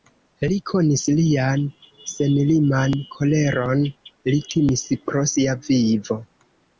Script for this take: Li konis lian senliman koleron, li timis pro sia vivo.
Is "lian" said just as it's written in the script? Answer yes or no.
yes